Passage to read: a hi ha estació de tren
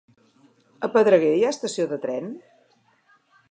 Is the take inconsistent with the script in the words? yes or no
yes